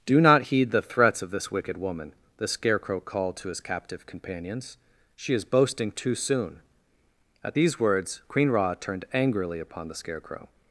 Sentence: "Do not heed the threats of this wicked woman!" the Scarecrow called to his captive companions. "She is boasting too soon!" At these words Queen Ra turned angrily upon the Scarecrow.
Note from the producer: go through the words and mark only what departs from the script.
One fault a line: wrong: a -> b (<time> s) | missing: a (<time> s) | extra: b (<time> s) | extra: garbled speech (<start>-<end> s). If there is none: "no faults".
no faults